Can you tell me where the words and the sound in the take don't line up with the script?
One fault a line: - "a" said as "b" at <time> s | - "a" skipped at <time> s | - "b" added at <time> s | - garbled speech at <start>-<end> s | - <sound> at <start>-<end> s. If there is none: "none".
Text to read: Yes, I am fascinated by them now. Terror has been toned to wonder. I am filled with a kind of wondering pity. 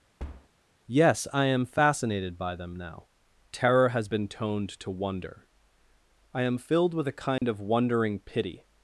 - thud at 0.2-0.5 s
- dropout at 7.4-7.4 s